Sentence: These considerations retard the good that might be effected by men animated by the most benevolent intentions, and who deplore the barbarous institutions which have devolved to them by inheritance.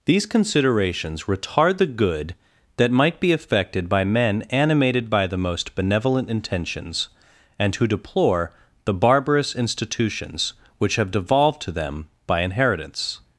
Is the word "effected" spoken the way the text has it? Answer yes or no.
yes